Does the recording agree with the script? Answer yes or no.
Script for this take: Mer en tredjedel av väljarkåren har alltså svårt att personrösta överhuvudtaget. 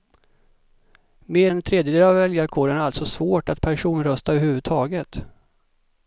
yes